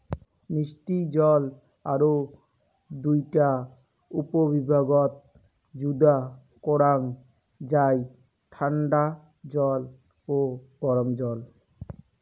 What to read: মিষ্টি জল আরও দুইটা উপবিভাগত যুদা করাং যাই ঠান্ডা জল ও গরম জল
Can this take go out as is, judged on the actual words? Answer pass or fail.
pass